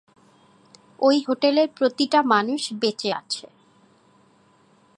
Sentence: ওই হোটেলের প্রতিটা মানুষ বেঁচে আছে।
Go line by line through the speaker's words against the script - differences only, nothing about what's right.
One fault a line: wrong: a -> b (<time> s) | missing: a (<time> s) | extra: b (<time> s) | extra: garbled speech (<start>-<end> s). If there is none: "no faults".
no faults